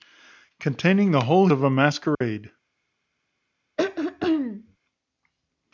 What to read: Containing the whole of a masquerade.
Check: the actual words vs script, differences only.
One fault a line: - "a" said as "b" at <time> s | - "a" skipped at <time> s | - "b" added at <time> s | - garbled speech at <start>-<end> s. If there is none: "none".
none